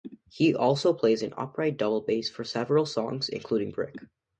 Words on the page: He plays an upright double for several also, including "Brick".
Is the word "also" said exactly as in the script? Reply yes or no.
no